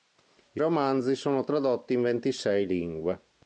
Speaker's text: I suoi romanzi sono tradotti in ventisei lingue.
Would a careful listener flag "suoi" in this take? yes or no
yes